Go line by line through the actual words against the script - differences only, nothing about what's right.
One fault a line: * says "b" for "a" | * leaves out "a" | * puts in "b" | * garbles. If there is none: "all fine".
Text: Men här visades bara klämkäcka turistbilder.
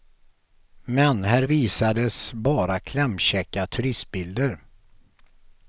all fine